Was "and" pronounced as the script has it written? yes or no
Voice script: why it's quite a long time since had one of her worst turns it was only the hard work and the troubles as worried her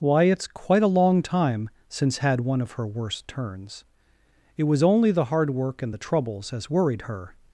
yes